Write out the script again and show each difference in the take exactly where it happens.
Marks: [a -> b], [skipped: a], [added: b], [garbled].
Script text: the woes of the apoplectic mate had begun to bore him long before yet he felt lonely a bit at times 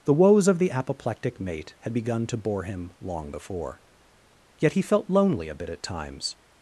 the woes of the apoplectic mate had begun to bore him long before yet he felt lonely a bit at times